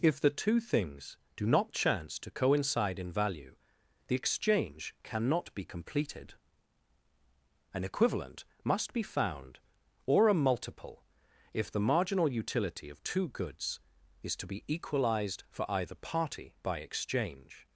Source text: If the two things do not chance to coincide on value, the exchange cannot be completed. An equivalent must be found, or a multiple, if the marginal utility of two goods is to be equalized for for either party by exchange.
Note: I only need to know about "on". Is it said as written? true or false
false